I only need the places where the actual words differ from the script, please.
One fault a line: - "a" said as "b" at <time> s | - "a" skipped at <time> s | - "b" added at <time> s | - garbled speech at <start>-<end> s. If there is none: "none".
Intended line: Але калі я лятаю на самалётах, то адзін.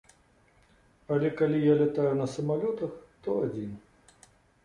none